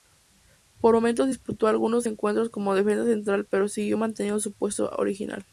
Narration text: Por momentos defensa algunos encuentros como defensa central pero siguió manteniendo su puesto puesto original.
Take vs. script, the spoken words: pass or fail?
fail